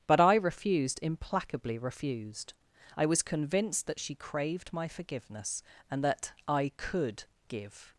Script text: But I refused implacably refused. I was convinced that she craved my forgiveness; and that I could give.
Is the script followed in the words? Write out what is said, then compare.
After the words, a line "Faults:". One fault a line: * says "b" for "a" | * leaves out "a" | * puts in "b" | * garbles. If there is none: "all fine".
But I refused implacably refused. I was convinced that she craved my forgiveness; and that I could give.
Faults:
all fine